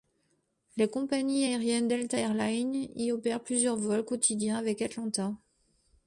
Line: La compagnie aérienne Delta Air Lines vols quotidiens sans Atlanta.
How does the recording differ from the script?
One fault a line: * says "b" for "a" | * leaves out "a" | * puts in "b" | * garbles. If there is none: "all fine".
* puts in "y opère plusieurs"
* says "avec" for "sans"